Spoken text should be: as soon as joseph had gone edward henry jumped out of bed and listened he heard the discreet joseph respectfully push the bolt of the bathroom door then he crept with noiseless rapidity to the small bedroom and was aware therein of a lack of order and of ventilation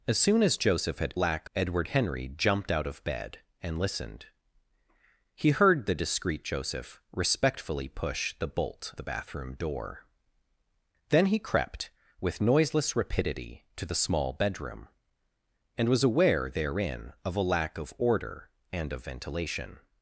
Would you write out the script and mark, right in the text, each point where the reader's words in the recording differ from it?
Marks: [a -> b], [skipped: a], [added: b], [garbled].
as soon as joseph had [gone -> lack] edward henry jumped out of bed and listened he heard the discreet joseph respectfully push the bolt [skipped: of] the bathroom door then he crept with noiseless rapidity to the small bedroom and was aware therein of a lack of order and of ventilation